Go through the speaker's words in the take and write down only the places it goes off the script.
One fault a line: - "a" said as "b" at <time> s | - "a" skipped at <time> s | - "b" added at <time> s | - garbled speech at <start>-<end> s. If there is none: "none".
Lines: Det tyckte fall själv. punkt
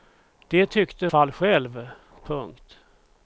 none